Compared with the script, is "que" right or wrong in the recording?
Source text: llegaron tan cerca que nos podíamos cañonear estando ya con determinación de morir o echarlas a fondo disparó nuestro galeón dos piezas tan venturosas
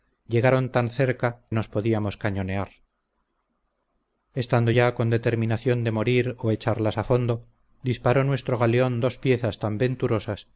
wrong